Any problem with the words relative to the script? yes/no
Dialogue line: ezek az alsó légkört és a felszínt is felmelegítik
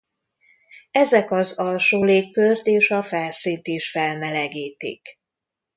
no